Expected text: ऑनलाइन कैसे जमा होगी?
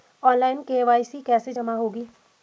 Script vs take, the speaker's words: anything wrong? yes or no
yes